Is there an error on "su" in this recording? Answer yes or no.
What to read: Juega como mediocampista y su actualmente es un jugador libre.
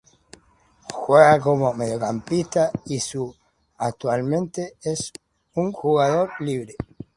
no